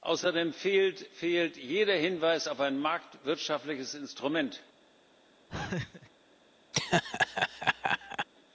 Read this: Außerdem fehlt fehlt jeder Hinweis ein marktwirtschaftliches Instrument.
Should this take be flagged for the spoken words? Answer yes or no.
yes